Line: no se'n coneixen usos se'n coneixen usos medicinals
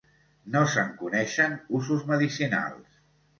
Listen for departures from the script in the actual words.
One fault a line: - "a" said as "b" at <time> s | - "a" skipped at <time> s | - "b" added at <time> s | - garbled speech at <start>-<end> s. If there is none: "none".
- "se'n coneixen usos" skipped at 2.1 s